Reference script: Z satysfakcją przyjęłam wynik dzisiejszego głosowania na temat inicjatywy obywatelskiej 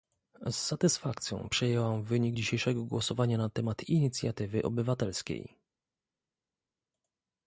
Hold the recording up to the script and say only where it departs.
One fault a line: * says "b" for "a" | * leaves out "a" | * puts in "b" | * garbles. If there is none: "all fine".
all fine